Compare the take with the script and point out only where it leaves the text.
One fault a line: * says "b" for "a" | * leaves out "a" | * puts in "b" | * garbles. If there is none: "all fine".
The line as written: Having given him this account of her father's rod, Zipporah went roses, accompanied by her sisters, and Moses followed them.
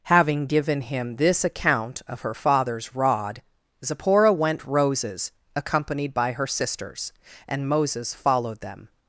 all fine